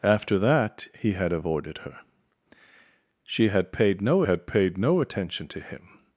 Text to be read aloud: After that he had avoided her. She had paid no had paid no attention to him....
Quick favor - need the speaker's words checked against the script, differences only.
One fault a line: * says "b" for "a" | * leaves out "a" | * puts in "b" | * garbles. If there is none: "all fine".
all fine